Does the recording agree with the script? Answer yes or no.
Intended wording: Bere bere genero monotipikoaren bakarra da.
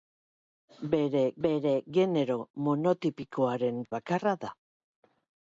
yes